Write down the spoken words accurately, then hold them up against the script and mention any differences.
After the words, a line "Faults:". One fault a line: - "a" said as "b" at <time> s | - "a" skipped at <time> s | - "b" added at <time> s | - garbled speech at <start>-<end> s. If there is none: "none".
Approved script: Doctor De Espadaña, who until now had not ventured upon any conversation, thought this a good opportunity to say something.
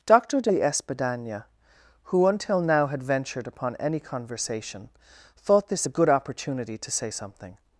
Doctor De Espadaña, who until now had ventured upon any conversation, thought this a good opportunity to say something.
Faults:
- "not" skipped at 3.0 s